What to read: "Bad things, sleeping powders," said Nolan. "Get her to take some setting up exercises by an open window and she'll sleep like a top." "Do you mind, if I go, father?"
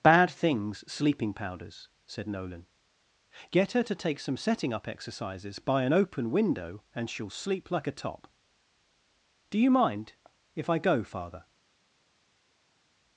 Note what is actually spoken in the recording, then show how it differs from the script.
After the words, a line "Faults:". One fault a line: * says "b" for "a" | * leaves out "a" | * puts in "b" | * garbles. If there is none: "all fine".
"Bad things, sleeping powders," said Nolan. "Get her to take some setting up exercises by an open window and she'll sleep like a top." "Do you mind, if I go, father?"
Faults:
all fine